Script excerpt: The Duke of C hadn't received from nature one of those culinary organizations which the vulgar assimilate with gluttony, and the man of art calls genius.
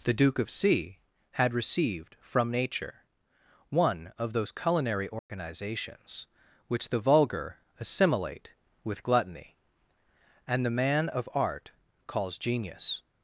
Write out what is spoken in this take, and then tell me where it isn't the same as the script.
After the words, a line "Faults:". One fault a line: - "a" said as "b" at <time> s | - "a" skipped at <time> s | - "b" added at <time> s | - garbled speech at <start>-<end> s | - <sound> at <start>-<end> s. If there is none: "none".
The Duke of C had received from nature one of those culinary organizations which the vulgar assimilate with gluttony, and the man of art calls genius.
Faults:
- "hadn't" said as "had" at 1.3 s
- dropout at 5.2-5.3 s